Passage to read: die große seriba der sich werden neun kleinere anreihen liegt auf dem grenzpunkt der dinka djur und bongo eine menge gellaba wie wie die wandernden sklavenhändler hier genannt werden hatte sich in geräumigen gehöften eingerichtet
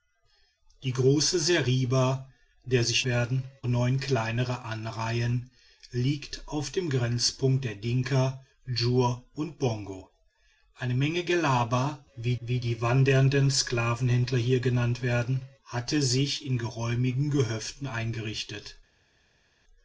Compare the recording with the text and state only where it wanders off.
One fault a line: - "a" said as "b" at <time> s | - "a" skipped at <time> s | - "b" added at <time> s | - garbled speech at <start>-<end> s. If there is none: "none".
none